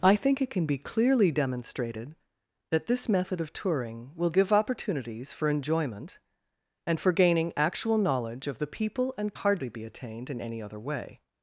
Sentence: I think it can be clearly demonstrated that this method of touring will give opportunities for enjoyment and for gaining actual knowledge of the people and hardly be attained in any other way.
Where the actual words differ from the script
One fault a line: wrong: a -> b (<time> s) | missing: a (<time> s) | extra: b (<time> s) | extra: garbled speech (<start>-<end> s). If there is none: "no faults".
no faults